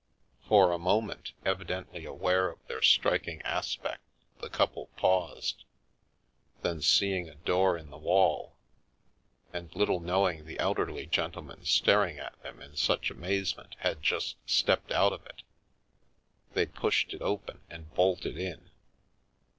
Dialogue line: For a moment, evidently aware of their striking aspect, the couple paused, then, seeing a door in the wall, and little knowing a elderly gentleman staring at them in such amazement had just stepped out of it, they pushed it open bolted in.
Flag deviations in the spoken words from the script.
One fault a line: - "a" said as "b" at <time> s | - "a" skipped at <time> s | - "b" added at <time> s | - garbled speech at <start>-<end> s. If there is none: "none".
- "a" said as "the" at 10.4 s
- "and" added at 17.7 s